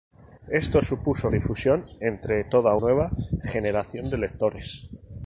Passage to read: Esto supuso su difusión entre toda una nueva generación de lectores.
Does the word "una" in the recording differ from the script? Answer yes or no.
yes